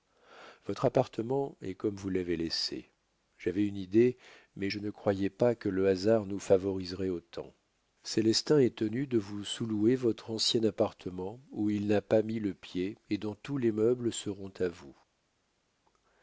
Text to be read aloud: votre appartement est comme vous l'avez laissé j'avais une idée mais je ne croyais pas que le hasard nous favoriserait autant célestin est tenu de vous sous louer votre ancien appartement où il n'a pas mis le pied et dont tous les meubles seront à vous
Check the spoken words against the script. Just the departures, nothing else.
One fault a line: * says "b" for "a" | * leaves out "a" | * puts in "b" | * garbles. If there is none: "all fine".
all fine